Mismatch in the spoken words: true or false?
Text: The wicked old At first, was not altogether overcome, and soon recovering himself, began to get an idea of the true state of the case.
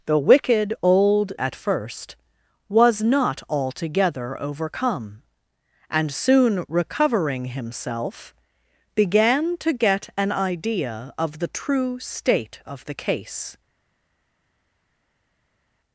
false